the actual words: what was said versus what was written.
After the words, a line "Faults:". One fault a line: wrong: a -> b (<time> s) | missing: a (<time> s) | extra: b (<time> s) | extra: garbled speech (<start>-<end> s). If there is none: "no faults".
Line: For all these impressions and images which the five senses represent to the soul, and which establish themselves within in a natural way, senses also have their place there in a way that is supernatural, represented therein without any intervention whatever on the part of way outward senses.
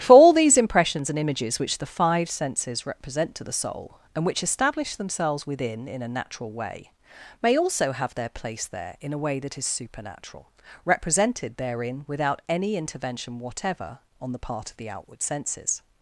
For all these impressions and images which the five senses represent to the soul, and which establish themselves within in a natural way, may also have their place there in a way that is supernatural, represented therein without any intervention whatever on the part of the outward senses.
Faults:
wrong: senses -> may (7.4 s)
wrong: way -> the (14.8 s)